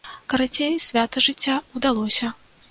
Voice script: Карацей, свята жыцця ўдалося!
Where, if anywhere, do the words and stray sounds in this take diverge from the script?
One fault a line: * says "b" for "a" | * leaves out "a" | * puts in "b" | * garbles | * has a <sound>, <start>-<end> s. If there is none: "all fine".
all fine